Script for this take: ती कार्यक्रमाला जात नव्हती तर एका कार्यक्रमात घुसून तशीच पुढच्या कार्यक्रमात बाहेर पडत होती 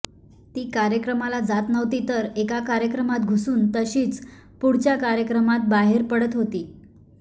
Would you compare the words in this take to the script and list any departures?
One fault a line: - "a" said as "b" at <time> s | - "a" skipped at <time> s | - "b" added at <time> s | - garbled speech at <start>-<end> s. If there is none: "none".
none